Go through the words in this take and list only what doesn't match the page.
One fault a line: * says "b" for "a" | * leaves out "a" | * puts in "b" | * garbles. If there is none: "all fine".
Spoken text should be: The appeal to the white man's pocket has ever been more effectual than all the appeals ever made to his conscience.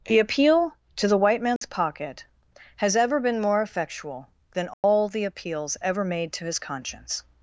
all fine